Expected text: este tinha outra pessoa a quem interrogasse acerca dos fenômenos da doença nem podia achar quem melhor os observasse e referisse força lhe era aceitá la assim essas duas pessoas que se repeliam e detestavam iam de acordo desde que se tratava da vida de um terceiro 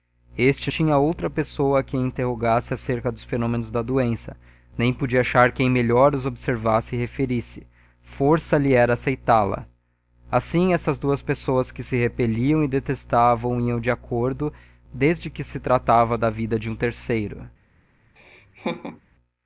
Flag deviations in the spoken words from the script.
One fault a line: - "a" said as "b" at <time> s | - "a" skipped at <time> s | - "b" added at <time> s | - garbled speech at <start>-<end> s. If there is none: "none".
none